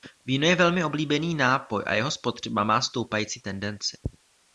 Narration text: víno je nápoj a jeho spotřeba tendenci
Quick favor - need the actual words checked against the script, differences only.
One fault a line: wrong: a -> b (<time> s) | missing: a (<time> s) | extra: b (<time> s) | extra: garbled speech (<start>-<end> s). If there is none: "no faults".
extra: velmi oblíbený (0.6 s)
extra: má stoupající (2.6 s)